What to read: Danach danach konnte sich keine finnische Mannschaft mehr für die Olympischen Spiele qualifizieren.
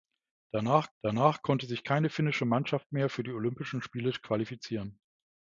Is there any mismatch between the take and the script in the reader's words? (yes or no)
no